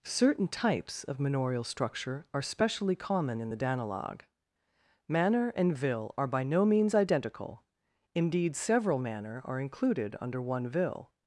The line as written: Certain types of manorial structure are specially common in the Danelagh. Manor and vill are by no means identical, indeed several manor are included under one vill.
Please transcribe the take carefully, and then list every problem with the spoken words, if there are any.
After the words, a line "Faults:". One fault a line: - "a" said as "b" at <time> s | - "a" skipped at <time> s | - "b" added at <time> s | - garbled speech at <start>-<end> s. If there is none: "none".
Certain types of manorial structure are specially common in the Danelagh. Manor and vill are by no means identical, indeed several manor are included under one vill.
Faults:
none